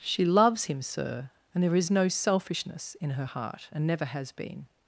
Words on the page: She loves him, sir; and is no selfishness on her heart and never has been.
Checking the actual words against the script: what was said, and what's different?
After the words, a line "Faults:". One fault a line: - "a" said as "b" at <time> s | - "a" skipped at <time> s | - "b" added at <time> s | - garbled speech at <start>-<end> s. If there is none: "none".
She loves him, sir; and there is no selfishness in her heart and never has been.
Faults:
- "there" added at 1.6 s
- "on" said as "in" at 3.0 s